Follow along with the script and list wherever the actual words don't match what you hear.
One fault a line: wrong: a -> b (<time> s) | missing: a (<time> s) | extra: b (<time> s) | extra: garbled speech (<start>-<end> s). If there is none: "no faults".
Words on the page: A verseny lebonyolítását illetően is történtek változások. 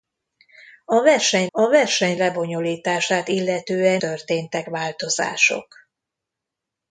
extra: a verseny (1.5 s)
missing: is (4.0 s)